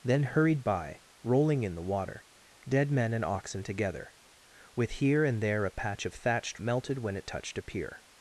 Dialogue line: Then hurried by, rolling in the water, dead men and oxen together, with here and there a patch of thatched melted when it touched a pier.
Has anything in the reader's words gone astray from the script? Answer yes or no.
no